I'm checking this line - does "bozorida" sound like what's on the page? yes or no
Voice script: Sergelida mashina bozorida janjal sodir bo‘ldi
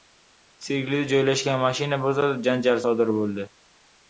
yes